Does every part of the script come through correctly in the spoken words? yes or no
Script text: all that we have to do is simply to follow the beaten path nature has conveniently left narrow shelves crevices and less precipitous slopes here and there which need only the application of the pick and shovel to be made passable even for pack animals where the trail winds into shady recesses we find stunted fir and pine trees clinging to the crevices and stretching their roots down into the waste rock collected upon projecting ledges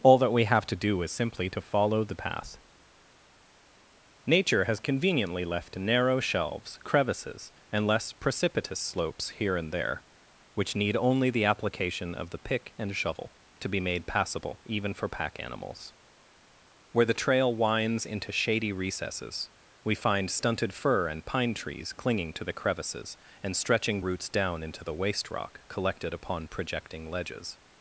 no